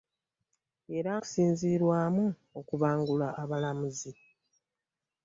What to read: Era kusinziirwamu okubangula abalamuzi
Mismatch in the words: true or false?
false